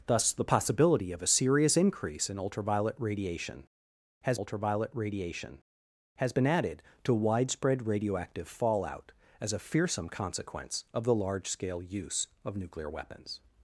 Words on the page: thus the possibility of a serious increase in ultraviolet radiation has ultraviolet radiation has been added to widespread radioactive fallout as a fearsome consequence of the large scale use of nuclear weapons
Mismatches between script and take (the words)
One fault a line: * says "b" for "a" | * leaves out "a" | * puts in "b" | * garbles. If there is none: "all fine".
all fine